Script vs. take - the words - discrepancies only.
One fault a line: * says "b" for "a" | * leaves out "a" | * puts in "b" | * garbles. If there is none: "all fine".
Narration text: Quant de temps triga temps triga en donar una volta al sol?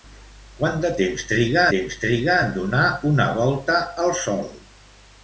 all fine